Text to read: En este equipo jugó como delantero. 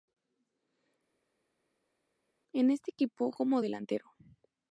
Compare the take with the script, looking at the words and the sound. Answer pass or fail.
fail